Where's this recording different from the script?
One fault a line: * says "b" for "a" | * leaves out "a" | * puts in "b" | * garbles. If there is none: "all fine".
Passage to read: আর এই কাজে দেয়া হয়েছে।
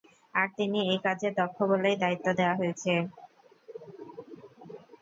* puts in "তিনি"
* puts in "দক্ষ বলেই দায়িত্ব"